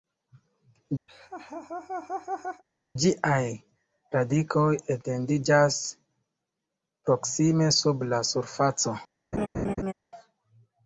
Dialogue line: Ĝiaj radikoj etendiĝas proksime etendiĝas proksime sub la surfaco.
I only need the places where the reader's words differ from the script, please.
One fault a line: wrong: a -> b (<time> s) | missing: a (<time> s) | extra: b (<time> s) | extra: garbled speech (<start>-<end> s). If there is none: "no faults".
missing: etendiĝas proksime (7.7 s)